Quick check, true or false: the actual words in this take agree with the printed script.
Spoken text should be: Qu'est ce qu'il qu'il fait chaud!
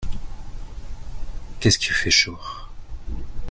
false